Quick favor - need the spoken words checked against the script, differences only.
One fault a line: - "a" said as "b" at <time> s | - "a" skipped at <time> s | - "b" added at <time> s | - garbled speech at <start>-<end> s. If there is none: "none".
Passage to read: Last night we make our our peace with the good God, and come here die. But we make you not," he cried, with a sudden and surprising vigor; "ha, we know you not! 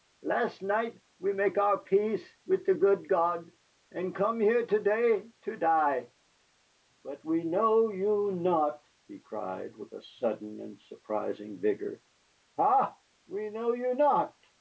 - "our" skipped at 1.8 s
- "to day to" added at 4.7 s
- "make" said as "know" at 7.4 s